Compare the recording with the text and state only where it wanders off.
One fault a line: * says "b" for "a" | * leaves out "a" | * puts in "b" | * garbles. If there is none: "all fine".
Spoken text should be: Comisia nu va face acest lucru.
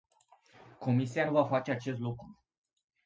all fine